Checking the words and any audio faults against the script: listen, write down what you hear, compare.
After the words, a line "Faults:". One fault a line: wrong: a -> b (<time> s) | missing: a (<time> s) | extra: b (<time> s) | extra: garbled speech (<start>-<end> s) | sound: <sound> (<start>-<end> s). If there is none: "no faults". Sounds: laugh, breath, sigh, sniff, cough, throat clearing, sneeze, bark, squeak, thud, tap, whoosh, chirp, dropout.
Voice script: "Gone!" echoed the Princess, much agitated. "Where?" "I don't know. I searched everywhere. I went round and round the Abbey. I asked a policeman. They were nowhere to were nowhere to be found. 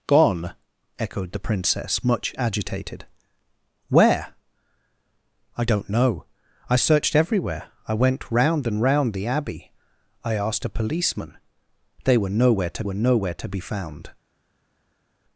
"Gone!" echoed the Princess, much agitated. "Where?" "I don't know. I searched everywhere. I went round and round the Abbey. I asked a policeman. They were nowhere to were nowhere to be found.
Faults:
no faults